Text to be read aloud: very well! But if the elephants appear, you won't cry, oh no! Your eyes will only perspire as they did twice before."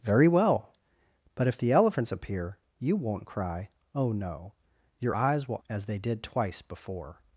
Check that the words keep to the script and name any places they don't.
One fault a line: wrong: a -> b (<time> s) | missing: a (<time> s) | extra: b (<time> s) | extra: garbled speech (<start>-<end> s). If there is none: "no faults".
missing: only perspire (5.6 s)